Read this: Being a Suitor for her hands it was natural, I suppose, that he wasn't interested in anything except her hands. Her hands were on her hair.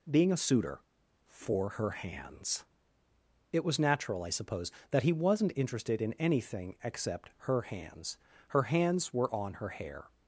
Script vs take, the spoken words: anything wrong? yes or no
no